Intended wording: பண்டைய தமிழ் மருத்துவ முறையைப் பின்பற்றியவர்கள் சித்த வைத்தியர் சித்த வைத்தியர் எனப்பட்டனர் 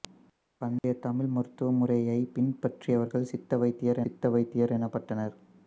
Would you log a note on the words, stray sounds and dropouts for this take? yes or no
yes